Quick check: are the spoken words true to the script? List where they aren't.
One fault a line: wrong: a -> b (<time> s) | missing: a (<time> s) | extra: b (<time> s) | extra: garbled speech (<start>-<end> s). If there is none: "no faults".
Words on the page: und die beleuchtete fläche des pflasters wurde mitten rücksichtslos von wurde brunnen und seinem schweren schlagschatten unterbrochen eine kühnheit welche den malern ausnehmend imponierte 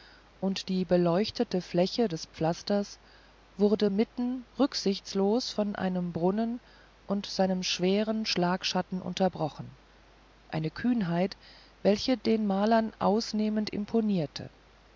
wrong: wurde -> einem (5.8 s)